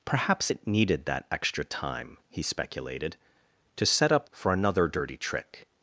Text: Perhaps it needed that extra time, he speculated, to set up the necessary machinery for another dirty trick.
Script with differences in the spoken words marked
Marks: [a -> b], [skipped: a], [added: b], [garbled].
Perhaps it needed that extra time, he speculated, to set up [skipped: the necessary machinery] for another dirty trick.